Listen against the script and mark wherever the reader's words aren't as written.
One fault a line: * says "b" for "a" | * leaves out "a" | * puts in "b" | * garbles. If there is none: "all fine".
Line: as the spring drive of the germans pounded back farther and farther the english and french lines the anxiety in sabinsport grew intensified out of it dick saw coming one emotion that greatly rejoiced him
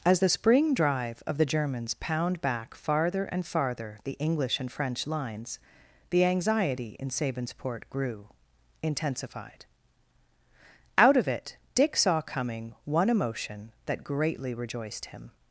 * says "pound" for "pounded"